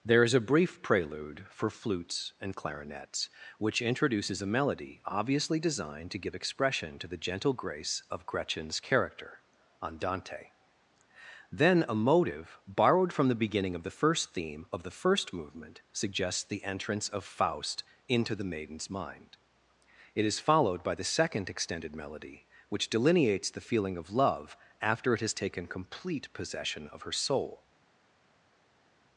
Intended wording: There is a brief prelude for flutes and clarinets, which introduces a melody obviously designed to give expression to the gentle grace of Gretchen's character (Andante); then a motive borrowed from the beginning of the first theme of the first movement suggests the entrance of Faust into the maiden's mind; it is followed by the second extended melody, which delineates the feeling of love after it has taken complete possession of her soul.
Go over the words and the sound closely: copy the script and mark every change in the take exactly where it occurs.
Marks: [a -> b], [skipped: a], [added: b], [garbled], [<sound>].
There is a brief prelude for flutes and clarinets, which introduces a melody obviously designed to give expression to the gentle grace of Gretchen's character (Andante); then a motive borrowed from the beginning of the first theme of the first movement suggests the entrance of Faust into the maiden's mind; it is followed by the second extended melody, which delineates the feeling of love after it has taken complete possession of her soul.